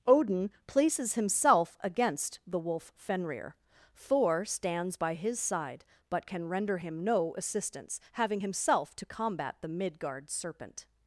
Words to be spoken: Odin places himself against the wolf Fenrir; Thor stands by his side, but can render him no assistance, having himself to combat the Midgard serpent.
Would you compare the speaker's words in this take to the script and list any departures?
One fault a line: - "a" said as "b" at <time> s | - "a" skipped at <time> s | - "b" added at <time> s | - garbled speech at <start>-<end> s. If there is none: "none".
none